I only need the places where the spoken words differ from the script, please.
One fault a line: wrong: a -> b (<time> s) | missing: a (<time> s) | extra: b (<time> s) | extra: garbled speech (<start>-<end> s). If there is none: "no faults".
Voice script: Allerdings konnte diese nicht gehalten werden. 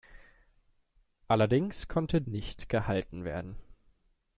missing: diese (2.2 s)